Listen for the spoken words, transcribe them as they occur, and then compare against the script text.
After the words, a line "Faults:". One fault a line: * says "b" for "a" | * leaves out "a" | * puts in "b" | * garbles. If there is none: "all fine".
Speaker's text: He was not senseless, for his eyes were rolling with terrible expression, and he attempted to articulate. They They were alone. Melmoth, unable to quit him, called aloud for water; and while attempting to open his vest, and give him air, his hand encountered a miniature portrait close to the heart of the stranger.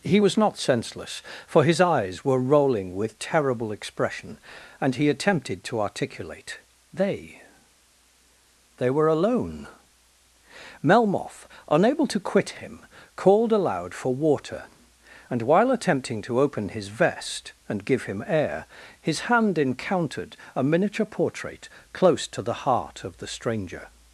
He was not senseless, for his eyes were rolling with terrible expression, and he attempted to articulate. They They were alone. Melmoth, unable to quit him, called aloud for water; and while attempting to open his vest, and give him air, his hand encountered a miniature portrait close to the heart of the stranger.
Faults:
all fine